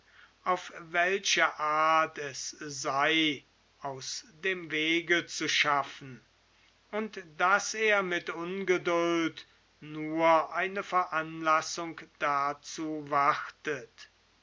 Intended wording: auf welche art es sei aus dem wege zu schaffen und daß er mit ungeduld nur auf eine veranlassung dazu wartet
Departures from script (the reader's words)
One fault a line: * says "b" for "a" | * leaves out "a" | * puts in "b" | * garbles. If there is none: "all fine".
* leaves out "auf"